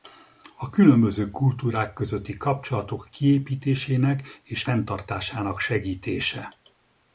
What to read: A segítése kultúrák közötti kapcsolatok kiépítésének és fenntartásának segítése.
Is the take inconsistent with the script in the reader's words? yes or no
yes